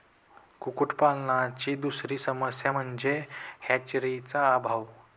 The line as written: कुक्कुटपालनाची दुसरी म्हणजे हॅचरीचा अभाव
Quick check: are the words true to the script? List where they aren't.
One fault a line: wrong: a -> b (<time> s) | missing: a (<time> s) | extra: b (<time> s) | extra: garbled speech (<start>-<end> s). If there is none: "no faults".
extra: समस्या (2.2 s)